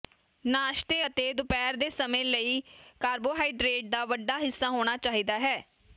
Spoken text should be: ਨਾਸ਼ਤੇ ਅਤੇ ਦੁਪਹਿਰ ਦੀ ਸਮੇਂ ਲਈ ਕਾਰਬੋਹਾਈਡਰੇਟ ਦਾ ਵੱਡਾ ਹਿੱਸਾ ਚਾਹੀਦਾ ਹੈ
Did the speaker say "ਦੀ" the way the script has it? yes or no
no